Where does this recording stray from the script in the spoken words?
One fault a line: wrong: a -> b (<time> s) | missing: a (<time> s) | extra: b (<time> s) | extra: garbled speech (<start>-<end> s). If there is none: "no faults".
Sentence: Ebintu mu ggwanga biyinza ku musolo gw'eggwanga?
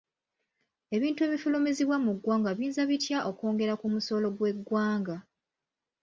extra: ebifulumizibwa (1.3 s)
extra: bitya okwongera (2.9 s)